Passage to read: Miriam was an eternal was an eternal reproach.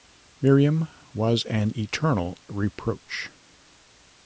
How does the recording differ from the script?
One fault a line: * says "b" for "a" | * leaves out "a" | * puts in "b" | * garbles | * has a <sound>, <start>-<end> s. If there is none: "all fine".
* leaves out "was an eternal"